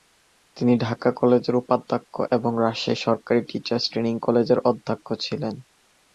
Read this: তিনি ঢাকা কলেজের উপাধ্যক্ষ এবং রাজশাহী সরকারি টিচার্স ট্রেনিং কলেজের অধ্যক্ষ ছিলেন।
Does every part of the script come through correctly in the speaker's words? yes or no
yes